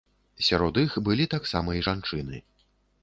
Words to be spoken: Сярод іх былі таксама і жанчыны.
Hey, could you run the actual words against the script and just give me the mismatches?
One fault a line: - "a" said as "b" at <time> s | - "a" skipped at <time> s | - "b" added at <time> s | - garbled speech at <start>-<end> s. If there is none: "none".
none